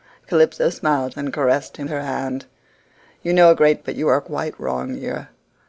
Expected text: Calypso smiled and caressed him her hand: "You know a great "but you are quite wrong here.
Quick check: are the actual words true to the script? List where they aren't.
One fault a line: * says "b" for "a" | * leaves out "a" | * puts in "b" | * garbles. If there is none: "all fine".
all fine